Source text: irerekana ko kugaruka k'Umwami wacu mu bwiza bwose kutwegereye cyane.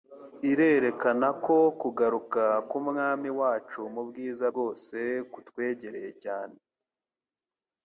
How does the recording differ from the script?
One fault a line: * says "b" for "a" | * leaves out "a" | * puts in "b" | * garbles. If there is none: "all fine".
all fine